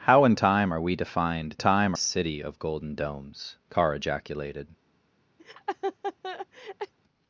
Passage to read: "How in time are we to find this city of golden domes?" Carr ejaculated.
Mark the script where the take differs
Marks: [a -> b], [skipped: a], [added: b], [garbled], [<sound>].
"How in time are we to find [this -> time] city of golden domes?" Carr ejaculated. [laugh]